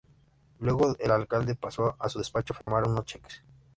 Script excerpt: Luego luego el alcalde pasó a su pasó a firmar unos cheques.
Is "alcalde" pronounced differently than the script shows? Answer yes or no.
no